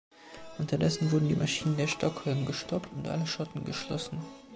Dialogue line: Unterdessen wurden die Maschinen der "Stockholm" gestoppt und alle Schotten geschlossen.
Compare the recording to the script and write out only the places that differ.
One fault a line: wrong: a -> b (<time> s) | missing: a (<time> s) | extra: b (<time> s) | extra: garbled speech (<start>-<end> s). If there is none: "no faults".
no faults